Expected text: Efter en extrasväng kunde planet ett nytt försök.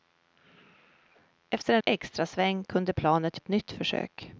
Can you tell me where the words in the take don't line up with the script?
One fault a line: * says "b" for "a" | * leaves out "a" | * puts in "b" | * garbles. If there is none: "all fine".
all fine